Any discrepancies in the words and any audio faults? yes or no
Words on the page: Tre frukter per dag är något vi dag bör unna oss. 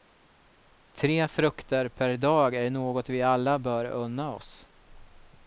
yes